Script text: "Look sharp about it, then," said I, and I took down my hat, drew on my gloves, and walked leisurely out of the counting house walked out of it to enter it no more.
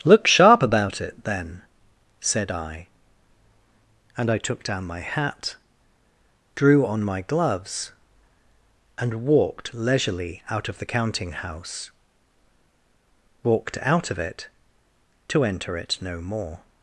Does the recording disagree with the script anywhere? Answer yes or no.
no